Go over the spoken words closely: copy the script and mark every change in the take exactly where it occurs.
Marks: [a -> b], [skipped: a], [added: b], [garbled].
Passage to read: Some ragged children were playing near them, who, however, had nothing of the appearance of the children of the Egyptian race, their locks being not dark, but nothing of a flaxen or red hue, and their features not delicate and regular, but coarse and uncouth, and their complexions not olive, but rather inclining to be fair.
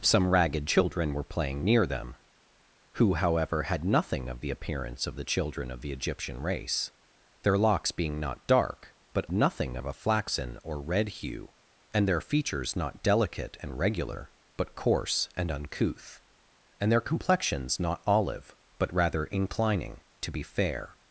Some ragged children were playing near them, who, however, had nothing of the appearance of the children of the Egyptian race, their locks being not dark, but nothing of a flaxen or red hue, and their features not delicate and regular, but coarse and uncouth, and their complexions not olive, but rather inclining to be fair.